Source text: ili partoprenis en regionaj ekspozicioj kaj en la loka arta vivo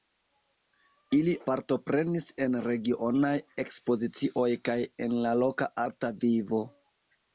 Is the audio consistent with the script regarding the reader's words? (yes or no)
yes